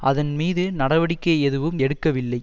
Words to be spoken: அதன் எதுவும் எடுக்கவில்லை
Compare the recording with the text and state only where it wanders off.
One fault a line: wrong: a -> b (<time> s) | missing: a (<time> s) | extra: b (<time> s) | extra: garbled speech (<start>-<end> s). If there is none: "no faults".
extra: மீது நடவடிக்கை (0.3 s)